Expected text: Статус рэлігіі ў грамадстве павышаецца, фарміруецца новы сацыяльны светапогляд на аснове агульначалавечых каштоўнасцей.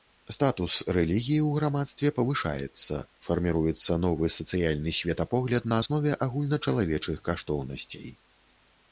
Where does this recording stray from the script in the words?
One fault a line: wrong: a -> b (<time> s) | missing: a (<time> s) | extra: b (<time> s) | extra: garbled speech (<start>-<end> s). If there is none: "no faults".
no faults